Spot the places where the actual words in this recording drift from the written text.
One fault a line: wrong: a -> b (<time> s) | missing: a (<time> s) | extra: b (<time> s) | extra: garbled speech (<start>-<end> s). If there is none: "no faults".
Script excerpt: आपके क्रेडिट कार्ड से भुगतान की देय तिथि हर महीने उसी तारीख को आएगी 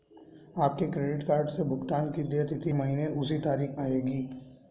missing: हर (2.7 s)
missing: को (3.8 s)